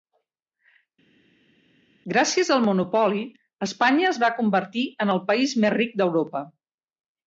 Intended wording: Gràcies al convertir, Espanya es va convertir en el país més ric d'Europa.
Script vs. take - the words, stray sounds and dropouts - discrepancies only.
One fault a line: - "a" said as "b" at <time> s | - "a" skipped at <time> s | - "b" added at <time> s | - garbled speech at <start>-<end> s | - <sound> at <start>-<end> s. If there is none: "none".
- "convertir" said as "monopoli" at 2.6 s